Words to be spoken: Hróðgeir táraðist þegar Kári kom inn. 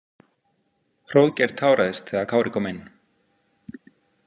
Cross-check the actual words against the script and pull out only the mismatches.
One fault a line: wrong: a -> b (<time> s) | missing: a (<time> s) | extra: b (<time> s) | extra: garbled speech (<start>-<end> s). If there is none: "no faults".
no faults